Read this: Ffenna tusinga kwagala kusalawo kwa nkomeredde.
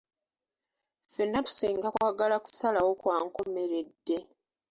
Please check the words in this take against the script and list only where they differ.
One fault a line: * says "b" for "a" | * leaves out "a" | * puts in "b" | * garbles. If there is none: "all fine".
all fine